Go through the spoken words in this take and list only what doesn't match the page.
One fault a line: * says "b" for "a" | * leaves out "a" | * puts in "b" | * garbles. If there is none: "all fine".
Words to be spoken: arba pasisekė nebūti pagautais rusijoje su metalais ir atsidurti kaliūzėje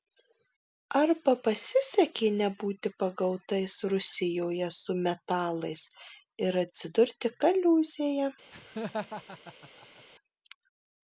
all fine